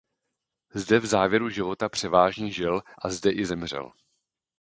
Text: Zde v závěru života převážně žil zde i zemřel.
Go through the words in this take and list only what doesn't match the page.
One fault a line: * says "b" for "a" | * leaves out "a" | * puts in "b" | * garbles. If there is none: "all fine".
* puts in "a"